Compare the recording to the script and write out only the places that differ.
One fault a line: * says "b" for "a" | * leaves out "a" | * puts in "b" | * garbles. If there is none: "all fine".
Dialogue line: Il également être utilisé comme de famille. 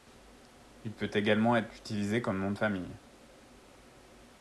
* puts in "peut"
* puts in "nom"